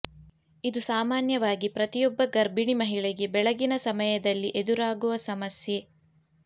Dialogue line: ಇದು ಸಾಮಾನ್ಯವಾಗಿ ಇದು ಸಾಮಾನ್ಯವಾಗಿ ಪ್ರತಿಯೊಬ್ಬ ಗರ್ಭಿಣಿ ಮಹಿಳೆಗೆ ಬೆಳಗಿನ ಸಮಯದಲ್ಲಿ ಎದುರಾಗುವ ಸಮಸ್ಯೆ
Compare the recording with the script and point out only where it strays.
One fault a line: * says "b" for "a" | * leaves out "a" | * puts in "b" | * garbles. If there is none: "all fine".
* leaves out "ಇದು ಸಾಮಾನ್ಯವಾಗಿ"